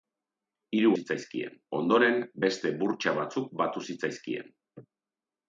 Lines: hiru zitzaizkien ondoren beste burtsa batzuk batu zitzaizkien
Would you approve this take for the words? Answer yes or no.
yes